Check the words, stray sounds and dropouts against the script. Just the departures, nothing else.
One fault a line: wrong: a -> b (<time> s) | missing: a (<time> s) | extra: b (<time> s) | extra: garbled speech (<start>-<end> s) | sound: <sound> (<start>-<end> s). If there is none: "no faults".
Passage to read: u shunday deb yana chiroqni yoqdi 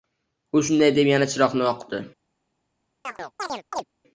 sound: chirp (3.0-3.8 s)